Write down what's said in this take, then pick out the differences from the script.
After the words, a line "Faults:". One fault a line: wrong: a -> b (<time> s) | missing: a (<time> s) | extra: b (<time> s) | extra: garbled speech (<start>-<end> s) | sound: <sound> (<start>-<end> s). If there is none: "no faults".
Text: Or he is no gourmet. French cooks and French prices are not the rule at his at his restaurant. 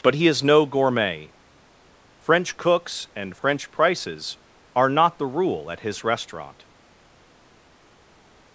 But he is no gourmet. French cooks and French prices are not the rule at his restaurant.
Faults:
wrong: Or -> But (0.0 s)
missing: at his (6.0 s)